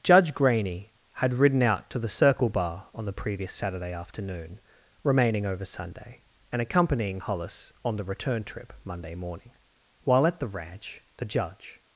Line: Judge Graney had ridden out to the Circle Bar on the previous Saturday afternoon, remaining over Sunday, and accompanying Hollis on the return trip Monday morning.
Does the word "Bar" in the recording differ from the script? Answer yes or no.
no